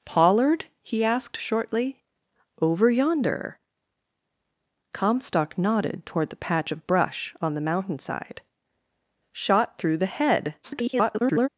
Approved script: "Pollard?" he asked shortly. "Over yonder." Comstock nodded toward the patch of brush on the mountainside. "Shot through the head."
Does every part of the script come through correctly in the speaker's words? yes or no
no